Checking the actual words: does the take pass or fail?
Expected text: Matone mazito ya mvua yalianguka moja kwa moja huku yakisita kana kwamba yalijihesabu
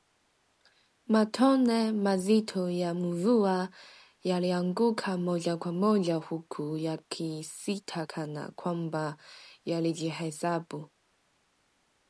pass